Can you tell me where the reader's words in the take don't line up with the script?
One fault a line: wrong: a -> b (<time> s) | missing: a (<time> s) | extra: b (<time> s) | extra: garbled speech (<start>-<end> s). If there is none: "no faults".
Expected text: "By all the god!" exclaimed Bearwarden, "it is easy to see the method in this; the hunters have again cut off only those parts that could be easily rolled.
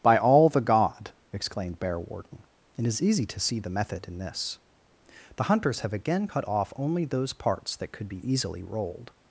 no faults